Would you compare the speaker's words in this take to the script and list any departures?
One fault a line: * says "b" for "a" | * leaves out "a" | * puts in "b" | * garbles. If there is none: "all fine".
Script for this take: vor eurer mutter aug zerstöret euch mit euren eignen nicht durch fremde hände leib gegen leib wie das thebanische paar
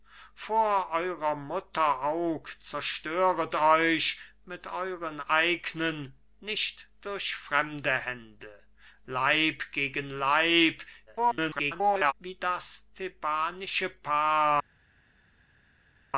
* garbles